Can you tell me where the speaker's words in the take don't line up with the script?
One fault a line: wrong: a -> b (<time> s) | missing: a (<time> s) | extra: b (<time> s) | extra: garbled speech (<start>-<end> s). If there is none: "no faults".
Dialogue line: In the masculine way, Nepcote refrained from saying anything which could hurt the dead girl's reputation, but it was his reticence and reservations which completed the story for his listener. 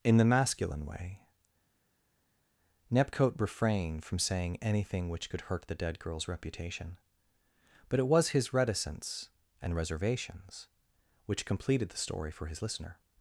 no faults